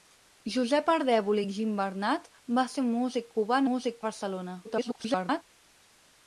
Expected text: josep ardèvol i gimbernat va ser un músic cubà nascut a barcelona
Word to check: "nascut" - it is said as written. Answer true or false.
false